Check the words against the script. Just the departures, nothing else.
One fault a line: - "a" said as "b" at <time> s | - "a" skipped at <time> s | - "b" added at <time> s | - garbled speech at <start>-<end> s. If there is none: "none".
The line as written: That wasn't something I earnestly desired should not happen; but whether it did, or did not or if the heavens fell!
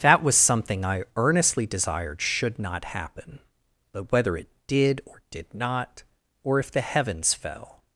- "wasn't" said as "was" at 0.2 s